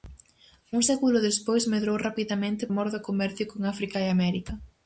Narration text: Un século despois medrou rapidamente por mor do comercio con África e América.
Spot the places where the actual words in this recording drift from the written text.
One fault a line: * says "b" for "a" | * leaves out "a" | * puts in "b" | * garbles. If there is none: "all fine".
* leaves out "por"